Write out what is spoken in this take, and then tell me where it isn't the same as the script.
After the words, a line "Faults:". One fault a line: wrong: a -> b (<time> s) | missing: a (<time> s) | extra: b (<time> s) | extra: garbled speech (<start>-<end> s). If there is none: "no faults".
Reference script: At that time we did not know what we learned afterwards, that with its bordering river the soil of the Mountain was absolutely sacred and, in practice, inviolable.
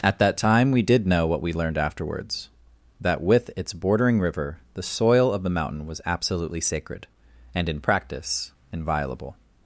At that time we did know what we learned afterwards, that with its bordering river the soil of the Mountain was absolutely sacred and, in practice, inviolable.
Faults:
missing: not (1.1 s)